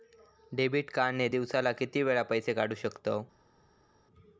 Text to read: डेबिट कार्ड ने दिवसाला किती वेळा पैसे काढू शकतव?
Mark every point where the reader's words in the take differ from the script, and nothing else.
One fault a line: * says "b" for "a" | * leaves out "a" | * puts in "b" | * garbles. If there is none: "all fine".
all fine